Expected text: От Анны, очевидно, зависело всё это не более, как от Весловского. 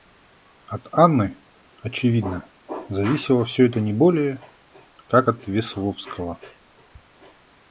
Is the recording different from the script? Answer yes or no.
no